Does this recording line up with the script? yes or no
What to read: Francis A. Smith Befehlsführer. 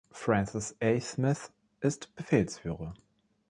no